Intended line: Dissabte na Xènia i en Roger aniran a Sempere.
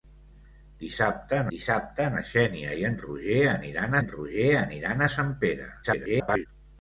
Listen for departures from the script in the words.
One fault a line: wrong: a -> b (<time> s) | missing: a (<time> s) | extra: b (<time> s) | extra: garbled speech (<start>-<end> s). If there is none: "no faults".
extra: dissabte (1.5 s)
extra: en Roger aniran (4.0 s)
extra: garbled speech (5.8-6.5 s)